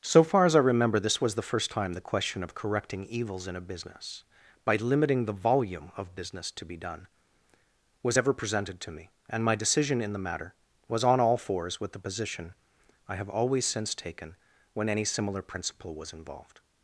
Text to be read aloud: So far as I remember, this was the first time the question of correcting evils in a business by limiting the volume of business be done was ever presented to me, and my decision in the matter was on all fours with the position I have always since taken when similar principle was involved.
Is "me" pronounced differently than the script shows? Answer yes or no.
no